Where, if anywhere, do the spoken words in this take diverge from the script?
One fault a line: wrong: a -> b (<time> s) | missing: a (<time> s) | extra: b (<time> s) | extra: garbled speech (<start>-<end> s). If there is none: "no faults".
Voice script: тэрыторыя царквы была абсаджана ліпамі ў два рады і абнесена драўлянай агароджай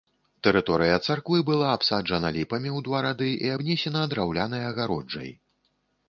no faults